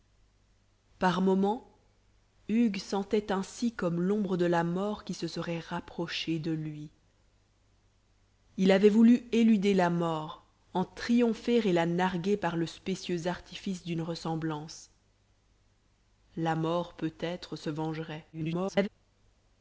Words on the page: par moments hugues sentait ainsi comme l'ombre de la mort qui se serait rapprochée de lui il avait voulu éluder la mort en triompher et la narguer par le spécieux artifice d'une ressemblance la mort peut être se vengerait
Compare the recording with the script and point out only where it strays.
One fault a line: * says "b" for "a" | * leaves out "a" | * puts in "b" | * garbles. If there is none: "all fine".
* garbles